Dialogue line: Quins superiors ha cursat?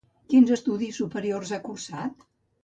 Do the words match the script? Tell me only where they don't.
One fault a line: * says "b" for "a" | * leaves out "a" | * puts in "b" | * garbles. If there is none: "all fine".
* puts in "estudis"